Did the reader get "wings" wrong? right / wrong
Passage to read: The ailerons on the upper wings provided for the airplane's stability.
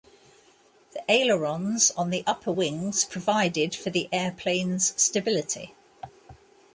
right